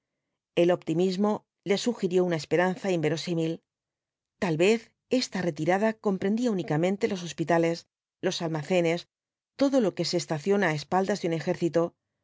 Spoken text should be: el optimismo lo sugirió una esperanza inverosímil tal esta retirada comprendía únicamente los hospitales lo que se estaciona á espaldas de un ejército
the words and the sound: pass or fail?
fail